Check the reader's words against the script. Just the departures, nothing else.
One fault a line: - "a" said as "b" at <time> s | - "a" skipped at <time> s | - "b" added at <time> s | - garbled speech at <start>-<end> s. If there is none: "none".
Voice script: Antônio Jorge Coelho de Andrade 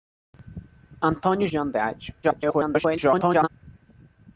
- "Jorge Coelho" skipped at 1.5 s
- garbled speech at 2.2-3.5 s